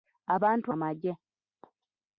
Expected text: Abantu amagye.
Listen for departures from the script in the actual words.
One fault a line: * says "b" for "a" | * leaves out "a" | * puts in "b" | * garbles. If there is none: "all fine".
all fine